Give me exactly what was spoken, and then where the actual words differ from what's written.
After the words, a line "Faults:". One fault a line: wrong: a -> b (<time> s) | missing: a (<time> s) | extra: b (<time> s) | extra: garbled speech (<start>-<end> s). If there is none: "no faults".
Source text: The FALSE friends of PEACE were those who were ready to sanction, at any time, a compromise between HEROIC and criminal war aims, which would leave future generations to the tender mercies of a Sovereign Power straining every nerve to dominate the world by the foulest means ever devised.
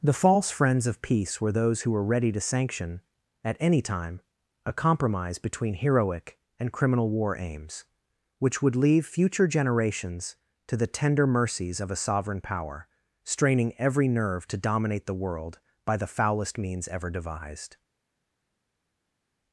The FALSE friends of PEACE were those who were ready to sanction, at any time, a compromise between HEROIC and criminal war aims, which would leave future generations to the tender mercies of a Sovereign Power straining every nerve to dominate the world by the foulest means ever devised.
Faults:
no faults